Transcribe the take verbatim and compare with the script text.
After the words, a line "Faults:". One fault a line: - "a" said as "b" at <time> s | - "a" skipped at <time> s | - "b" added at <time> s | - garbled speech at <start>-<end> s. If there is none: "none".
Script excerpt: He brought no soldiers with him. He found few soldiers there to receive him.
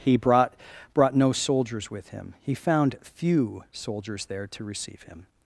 He brought brought no soldiers with him. He found few soldiers there to receive him.
Faults:
- "brought" added at 0.9 s